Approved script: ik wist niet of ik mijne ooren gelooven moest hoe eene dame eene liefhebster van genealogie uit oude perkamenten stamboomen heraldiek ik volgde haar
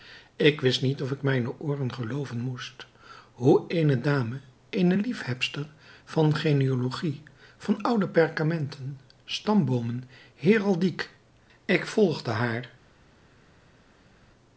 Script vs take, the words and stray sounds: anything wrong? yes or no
yes